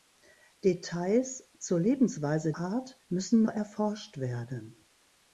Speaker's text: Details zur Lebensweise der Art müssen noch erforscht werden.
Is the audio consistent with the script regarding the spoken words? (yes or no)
no